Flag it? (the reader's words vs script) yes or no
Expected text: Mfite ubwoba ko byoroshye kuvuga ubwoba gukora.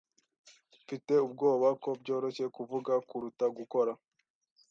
yes